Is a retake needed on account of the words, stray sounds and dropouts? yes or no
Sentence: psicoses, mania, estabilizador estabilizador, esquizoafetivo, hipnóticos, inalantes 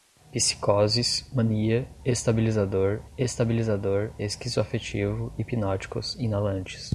no